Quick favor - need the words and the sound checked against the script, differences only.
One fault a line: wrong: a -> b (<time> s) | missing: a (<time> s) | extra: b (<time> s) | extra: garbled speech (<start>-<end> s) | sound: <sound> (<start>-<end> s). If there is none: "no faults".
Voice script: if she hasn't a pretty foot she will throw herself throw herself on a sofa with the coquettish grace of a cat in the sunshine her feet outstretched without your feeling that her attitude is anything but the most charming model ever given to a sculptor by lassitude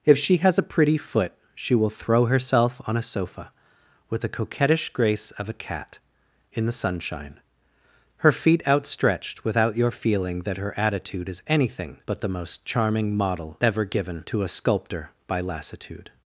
wrong: hasn't -> has (0.4 s)
missing: throw herself (2.8 s)